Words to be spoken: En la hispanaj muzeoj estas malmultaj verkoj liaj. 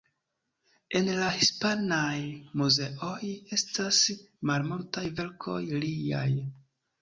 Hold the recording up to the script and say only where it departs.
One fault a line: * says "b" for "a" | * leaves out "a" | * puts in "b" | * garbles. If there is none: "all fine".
all fine